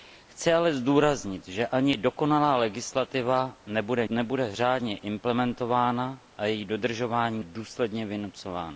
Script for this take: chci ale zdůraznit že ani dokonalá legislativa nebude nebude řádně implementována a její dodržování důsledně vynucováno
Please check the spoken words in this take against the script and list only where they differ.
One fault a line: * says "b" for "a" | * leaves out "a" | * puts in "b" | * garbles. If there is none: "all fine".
all fine